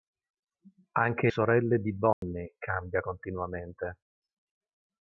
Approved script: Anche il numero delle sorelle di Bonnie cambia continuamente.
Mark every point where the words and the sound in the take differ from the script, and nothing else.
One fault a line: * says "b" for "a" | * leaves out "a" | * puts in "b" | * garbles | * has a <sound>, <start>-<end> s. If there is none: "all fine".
* leaves out "il numero delle"
* has a dropout, 2.1-2.2 s